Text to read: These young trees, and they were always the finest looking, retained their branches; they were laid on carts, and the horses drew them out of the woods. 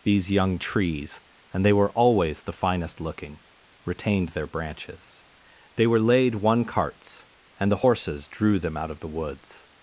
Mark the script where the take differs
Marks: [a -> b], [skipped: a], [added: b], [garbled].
These young trees, and they were always the finest looking, retained their branches; they were laid [on -> one] carts, and the horses drew them out of the woods.